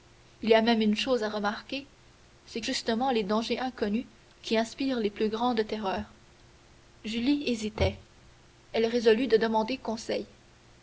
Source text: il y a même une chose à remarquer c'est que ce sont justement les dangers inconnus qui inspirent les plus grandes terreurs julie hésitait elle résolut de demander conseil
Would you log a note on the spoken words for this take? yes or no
yes